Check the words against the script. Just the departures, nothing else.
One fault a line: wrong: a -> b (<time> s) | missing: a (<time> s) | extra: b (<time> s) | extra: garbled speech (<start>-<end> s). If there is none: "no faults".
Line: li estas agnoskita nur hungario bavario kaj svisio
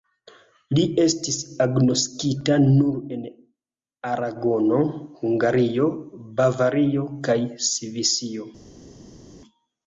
wrong: estas -> estis (1.0 s)
extra: en aragono (3.2 s)